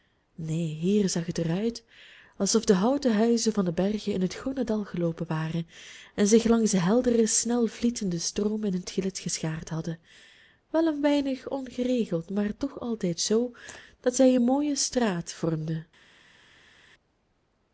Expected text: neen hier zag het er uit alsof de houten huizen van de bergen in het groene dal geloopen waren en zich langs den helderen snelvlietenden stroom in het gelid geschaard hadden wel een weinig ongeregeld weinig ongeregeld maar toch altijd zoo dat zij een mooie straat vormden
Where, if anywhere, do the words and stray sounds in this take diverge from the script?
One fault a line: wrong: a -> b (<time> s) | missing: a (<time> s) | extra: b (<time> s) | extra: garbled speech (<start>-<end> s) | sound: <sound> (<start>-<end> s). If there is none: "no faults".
missing: weinig ongeregeld (12.3 s)